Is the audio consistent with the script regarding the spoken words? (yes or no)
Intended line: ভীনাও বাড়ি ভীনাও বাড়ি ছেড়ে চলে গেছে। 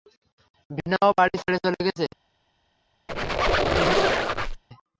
no